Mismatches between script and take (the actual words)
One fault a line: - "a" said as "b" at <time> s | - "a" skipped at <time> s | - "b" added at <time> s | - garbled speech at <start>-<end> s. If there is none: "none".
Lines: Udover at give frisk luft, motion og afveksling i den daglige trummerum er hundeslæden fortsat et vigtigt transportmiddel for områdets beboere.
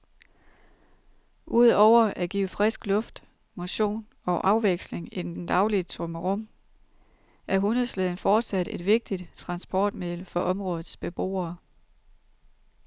- "den" added at 5.4 s